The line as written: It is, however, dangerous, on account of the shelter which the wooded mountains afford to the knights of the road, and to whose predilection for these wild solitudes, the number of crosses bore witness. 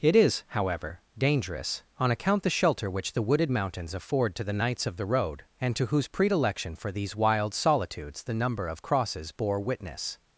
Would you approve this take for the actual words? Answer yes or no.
no